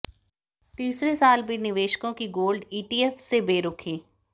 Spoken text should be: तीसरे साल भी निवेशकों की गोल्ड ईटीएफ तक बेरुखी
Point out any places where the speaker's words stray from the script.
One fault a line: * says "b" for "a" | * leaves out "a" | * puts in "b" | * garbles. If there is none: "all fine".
* says "से" for "तक"